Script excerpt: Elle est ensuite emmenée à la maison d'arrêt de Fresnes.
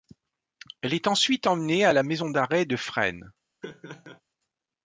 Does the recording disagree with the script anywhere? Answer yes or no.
no